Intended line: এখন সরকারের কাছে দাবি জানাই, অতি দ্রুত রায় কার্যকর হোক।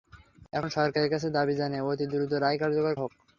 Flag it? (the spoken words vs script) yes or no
no